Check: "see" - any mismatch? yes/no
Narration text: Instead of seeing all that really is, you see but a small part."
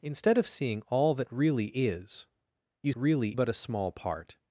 yes